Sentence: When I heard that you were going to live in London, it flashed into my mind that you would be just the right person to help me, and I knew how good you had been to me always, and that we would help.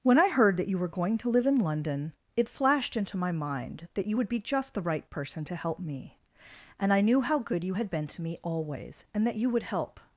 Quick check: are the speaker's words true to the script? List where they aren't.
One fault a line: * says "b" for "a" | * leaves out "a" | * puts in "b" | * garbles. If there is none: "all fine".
* says "you" for "we"